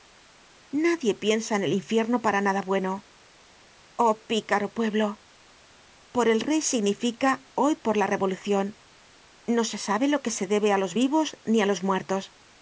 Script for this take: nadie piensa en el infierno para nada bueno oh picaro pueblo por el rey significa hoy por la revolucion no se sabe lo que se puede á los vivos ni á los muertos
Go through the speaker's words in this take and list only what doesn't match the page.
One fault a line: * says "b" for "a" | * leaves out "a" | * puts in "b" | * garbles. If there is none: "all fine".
* says "debe" for "puede"